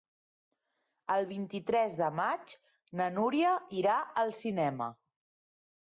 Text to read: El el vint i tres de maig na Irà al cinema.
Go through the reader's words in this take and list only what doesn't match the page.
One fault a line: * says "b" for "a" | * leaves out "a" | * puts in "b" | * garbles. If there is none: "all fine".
* leaves out "el"
* puts in "Núria"